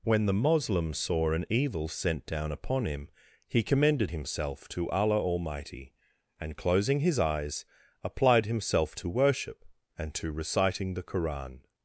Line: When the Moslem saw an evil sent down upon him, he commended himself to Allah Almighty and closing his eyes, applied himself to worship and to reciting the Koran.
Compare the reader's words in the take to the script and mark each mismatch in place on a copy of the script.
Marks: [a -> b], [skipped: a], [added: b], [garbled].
When the Moslem saw an evil sent down upon him, he commended himself to Allah Almighty and closing his eyes, applied himself to worship and to reciting the Koran.